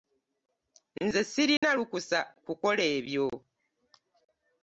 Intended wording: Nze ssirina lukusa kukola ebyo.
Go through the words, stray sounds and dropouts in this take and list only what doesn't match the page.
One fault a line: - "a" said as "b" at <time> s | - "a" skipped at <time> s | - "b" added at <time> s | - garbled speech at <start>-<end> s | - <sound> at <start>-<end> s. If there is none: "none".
- dropout at 1.6-1.6 s